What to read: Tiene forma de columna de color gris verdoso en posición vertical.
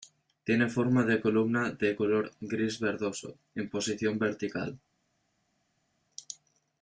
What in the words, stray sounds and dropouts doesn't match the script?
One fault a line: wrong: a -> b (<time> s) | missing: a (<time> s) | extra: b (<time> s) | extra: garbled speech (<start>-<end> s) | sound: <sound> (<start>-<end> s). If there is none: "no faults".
no faults